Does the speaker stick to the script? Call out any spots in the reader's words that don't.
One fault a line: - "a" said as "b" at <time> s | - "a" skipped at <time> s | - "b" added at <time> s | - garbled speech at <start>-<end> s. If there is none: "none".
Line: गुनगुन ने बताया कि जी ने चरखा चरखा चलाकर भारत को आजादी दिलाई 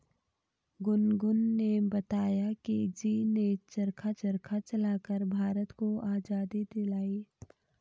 none